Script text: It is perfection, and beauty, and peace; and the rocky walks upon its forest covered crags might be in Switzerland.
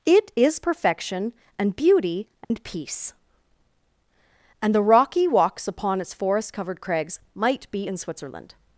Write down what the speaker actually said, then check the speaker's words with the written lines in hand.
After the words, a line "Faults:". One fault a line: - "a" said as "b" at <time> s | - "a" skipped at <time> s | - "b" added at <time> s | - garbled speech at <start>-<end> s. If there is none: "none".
It is perfection, and beauty, and peace; and the rocky walks upon its forest covered crags might be in Switzerland.
Faults:
none